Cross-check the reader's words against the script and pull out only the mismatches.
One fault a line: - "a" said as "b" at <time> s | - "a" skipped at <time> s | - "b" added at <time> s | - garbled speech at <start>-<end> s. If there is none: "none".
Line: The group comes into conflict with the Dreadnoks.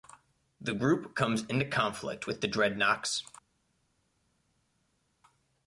none